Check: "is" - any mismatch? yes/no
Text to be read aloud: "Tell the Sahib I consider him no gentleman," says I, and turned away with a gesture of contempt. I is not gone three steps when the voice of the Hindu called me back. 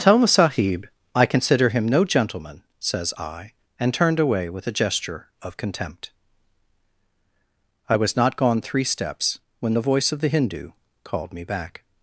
yes